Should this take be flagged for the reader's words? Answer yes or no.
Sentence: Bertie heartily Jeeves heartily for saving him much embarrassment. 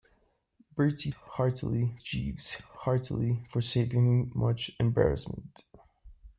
no